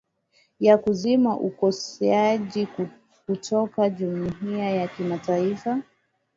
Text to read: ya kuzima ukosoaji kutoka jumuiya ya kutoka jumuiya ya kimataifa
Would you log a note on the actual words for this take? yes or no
yes